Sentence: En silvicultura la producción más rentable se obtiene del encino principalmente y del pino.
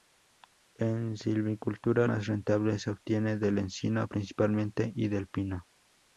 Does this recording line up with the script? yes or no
no